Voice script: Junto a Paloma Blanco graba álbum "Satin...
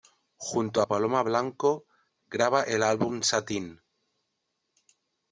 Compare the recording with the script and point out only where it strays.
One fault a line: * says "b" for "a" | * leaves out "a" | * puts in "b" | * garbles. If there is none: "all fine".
* puts in "el"